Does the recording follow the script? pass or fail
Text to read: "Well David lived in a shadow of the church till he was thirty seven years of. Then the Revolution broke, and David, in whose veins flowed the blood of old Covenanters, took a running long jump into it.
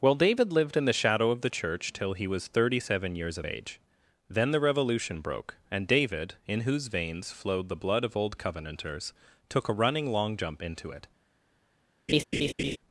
fail